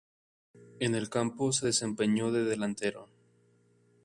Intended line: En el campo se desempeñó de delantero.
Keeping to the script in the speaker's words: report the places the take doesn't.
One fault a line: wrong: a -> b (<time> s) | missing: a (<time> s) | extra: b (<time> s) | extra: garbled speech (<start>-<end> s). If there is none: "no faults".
no faults